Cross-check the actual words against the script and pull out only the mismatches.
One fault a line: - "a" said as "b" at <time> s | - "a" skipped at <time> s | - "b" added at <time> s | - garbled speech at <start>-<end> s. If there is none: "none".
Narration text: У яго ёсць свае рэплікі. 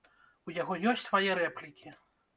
none